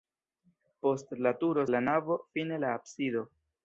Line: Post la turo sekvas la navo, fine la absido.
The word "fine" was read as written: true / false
true